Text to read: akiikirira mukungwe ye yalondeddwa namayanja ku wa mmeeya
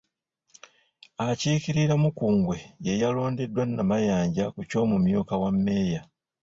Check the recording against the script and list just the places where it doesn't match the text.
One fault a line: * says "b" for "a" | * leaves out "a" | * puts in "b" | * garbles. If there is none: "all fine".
* puts in "ky'omumyuka"